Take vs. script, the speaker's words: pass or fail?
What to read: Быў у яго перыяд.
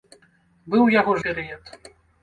pass